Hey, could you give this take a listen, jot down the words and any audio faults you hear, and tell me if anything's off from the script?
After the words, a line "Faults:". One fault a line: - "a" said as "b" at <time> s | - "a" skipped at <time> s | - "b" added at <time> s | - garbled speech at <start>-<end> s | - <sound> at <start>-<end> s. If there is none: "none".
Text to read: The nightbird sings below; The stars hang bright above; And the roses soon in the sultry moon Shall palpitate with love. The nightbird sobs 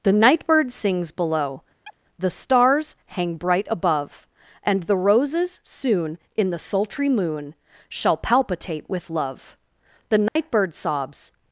The nightbird sings below; The stars hang bright above; And the roses soon in the sultry moon Shall palpitate with love. The nightbird sobs
Faults:
- chirp at 1.9-2.0 s
- dropout at 10.3-10.4 s